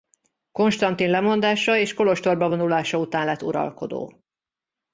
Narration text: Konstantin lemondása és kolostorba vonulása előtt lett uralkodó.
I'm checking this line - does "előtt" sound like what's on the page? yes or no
no